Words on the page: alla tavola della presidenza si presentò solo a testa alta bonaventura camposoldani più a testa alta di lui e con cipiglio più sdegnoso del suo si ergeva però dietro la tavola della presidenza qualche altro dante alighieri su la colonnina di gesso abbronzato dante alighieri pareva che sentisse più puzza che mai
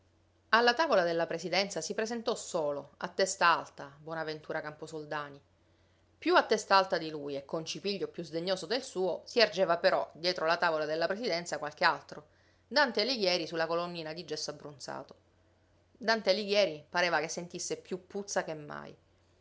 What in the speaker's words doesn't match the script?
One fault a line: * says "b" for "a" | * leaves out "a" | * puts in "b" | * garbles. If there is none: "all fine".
all fine